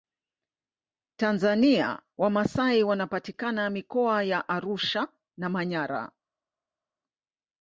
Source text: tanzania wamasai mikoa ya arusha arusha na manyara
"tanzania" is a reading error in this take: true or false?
false